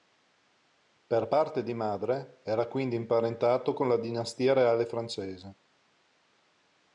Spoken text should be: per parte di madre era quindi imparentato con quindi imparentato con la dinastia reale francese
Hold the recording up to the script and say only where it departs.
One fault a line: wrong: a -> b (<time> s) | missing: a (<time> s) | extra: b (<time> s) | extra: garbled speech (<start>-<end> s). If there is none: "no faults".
missing: quindi imparentato con (3.9 s)